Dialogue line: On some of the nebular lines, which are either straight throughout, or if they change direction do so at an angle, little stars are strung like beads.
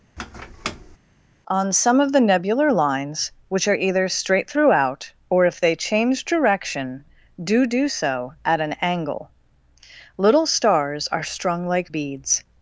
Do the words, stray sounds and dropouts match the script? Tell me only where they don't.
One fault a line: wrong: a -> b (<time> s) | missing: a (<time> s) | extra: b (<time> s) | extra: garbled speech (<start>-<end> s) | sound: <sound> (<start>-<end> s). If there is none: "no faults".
sound: squeak (0.2-1.0 s)
extra: do (7.7 s)